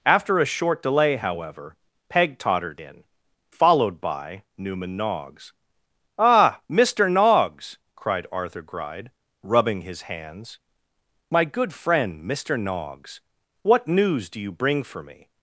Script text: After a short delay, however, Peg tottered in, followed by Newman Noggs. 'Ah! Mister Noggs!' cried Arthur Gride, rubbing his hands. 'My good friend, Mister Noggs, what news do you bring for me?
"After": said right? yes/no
yes